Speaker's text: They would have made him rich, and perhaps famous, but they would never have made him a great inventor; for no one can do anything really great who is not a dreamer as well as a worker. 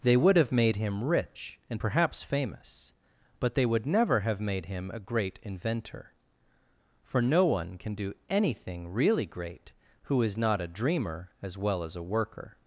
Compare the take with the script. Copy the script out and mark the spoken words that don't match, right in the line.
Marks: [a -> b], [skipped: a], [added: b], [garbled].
They would have made him rich, and perhaps famous, but they would never have made him a great inventor; for no one can do anything really great who is not a dreamer as well as a worker.